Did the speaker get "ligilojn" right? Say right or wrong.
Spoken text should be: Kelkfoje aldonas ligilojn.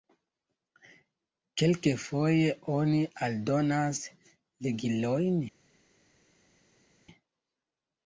right